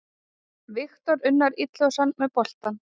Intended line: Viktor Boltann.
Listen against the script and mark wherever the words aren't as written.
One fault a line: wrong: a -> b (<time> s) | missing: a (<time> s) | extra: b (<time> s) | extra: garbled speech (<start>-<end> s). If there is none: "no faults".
extra: Unnar Illugason með (1.3 s)